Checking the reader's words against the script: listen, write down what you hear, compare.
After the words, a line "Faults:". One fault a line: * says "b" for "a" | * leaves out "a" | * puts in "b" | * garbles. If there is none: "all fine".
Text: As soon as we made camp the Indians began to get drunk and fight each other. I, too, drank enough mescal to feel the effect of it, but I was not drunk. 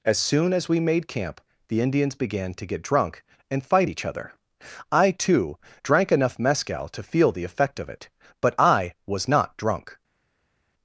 As soon as we made camp the Indians began to get drunk and fight each other. I, too, drank enough mescal to feel the effect of it, but I was not drunk.
Faults:
all fine